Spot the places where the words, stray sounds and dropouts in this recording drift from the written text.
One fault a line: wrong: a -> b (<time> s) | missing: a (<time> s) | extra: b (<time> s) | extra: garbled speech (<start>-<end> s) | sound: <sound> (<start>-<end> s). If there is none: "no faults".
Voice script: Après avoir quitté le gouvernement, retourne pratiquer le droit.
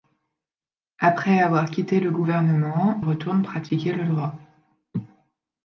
no faults